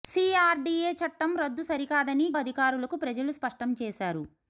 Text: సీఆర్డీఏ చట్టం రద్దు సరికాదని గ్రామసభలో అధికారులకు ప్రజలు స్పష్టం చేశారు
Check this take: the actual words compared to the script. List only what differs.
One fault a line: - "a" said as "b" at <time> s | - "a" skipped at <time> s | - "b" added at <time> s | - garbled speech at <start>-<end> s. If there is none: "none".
- "గ్రామసభలో" skipped at 2.3 s